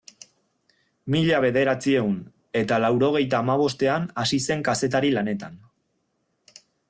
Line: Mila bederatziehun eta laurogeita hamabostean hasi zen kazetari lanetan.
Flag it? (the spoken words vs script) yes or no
no